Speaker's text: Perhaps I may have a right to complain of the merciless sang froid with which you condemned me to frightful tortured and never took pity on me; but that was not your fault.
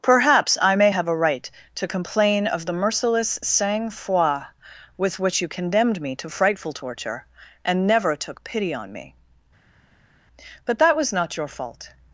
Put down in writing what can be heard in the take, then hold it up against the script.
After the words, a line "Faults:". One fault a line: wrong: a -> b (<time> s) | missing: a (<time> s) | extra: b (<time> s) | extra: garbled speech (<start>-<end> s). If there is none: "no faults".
Perhaps I may have a right to complain of the merciless sang froid with which you condemned me to frightful torture and never took pity on me; but that was not your fault.
Faults:
wrong: tortured -> torture (6.7 s)